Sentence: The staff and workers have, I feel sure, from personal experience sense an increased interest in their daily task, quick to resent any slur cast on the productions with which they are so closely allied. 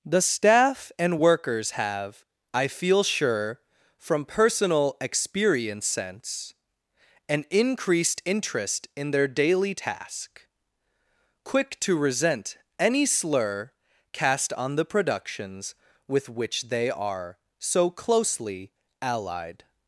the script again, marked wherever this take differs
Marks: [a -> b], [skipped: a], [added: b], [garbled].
The staff and workers have, I feel sure, from personal experience sense an increased interest in their daily task, quick to resent any slur cast on the productions with which they are so closely allied.